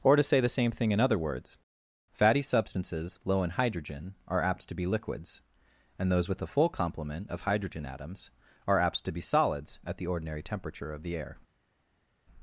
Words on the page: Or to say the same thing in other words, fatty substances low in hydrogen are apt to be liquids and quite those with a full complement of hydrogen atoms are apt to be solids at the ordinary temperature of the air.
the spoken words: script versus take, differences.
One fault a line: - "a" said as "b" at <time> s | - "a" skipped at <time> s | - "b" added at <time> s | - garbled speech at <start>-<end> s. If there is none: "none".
- "quite" skipped at 6.1 s